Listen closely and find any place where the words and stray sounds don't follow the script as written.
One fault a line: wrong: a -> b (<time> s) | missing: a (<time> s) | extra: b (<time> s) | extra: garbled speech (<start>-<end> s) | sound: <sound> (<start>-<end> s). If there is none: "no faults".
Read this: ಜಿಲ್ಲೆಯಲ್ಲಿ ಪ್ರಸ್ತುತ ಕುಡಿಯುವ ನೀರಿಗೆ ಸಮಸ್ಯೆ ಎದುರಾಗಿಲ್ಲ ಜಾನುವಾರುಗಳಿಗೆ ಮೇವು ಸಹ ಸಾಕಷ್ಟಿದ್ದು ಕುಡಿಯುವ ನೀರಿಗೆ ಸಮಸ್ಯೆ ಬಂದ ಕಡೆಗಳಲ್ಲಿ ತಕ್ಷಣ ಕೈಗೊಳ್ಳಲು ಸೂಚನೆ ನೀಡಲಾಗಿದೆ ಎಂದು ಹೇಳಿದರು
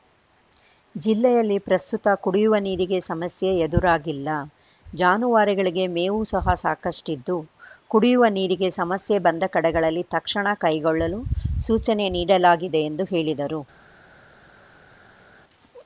no faults